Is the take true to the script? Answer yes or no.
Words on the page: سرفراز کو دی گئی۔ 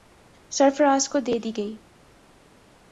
no